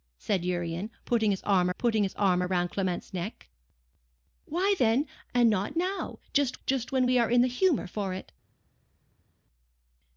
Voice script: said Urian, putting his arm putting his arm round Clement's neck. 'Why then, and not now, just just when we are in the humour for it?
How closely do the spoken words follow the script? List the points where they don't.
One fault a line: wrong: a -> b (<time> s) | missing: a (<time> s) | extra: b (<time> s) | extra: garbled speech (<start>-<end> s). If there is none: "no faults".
no faults